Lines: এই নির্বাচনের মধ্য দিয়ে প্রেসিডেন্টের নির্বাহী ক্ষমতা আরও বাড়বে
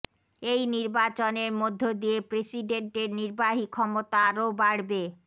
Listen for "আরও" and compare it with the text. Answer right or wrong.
right